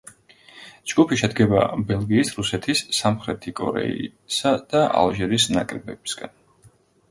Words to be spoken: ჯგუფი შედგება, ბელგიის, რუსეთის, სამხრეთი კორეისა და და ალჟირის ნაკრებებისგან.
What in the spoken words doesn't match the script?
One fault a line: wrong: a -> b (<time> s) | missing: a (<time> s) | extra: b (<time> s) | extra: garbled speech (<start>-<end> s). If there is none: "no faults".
missing: და (4.9 s)